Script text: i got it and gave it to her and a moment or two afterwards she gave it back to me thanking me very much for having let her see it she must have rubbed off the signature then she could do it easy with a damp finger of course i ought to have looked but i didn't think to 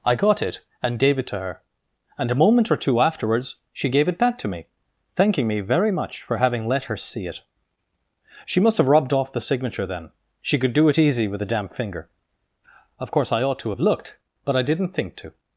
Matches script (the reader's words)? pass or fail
pass